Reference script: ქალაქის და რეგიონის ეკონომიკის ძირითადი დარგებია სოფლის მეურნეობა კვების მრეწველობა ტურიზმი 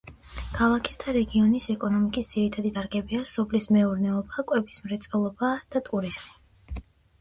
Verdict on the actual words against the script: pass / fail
fail